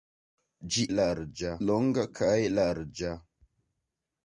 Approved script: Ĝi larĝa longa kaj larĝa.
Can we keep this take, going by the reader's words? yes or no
yes